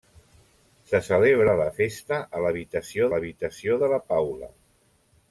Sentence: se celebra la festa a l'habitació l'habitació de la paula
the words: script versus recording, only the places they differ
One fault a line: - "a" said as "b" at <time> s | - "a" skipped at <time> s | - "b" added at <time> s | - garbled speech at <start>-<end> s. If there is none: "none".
none